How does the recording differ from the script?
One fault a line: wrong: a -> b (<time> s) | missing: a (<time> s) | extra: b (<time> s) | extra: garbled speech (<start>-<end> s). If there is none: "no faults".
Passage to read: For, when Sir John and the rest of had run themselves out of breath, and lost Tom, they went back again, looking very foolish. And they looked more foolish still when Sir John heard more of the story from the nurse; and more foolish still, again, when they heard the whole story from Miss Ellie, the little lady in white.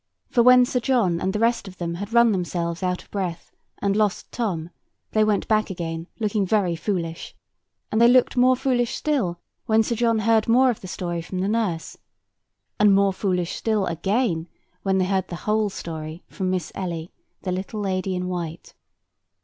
extra: them (1.8 s)